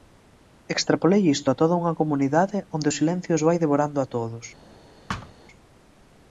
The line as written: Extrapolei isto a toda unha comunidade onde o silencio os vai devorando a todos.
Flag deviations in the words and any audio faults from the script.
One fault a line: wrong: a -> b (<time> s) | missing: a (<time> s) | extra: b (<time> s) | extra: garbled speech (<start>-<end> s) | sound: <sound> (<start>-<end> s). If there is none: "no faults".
sound: thud (5.1-5.3 s)